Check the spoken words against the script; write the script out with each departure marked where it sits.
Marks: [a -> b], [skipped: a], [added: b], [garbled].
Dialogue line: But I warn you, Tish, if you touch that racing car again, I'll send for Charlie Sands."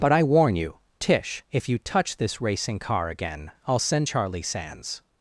But I warn you, Tish, if you touch [that -> this] racing car again, I'll send [skipped: for] Charlie Sands."